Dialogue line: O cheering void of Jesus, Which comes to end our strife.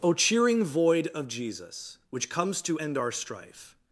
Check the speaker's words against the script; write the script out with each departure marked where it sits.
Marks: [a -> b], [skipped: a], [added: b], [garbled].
O cheering void of Jesus, Which comes to end our strife.